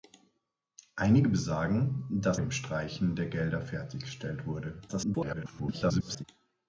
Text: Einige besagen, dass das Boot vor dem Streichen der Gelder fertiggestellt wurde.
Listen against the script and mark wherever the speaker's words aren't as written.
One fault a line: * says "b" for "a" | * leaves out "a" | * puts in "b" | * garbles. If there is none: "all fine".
* leaves out "das Boot vor"
* garbles